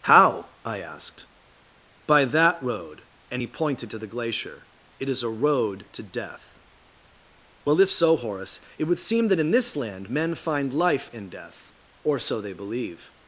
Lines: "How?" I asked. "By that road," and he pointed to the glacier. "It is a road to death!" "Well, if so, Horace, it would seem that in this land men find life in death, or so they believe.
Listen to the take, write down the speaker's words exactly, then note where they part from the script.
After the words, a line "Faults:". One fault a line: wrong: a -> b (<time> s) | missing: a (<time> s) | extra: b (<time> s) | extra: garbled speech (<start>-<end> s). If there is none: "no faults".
"How?" I asked. "By that road," and he pointed to the glacier. "It is a road to death!" "Well, if so, Horace, it would seem that in this land men find life in death, or so they believe.
Faults:
no faults